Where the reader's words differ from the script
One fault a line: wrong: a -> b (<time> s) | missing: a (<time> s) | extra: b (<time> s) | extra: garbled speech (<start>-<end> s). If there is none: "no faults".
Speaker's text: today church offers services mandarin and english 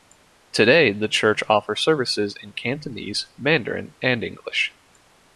extra: the (0.9 s)
extra: in cantonese (2.4 s)